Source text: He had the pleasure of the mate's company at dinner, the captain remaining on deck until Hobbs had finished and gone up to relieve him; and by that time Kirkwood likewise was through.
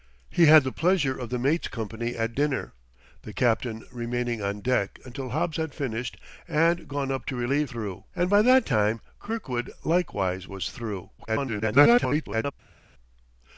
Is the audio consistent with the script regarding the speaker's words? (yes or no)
no